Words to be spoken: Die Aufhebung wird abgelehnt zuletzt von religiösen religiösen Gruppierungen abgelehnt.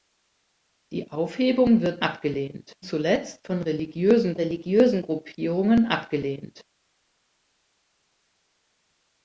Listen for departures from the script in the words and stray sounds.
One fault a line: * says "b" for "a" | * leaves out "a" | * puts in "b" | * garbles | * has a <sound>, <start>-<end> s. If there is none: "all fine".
all fine